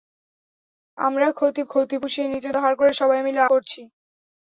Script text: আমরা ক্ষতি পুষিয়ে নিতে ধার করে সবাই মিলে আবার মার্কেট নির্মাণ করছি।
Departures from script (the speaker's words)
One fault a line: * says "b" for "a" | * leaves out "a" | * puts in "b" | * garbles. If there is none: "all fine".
* puts in "ক্ষতি"
* leaves out "আবার মার্কেট নির্মাণ"